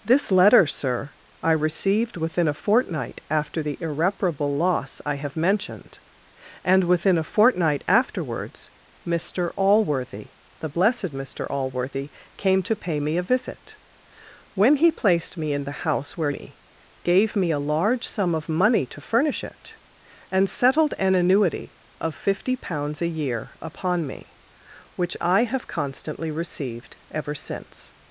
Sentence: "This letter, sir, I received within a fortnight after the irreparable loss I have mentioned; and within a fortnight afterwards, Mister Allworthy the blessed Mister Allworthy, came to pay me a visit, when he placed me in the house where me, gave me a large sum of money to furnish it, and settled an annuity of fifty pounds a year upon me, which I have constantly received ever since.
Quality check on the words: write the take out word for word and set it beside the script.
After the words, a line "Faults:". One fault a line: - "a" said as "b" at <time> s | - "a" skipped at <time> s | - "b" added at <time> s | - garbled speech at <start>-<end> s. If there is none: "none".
"This letter, sir, I received within a fortnight after the irreparable loss I have mentioned; and within a fortnight afterwards, Mister Allworthy the blessed Mister Allworthy, came to pay me a visit, when he placed me in the house where me, gave me a large sum of money to furnish it, and settled an annuity of fifty pounds a year upon me, which I have constantly received ever since.
Faults:
none